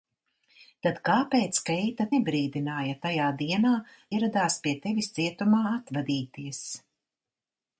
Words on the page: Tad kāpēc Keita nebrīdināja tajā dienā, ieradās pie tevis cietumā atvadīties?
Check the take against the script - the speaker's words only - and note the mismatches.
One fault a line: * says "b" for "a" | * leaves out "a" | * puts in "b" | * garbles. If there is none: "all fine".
all fine